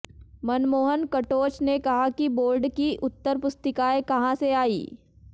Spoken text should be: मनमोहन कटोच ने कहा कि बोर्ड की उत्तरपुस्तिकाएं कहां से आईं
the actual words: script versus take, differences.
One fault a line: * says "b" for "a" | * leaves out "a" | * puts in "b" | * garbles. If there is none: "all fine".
all fine